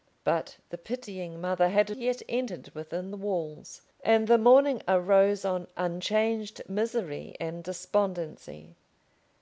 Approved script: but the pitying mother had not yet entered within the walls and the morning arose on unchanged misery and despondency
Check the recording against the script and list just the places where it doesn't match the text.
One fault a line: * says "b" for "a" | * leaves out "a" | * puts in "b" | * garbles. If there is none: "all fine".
* leaves out "not"